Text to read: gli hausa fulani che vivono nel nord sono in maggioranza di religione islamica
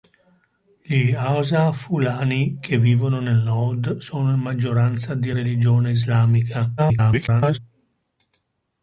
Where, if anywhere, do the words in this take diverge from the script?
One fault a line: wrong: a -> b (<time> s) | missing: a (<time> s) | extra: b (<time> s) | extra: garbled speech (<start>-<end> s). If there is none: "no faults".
extra: garbled speech (6.8-7.6 s)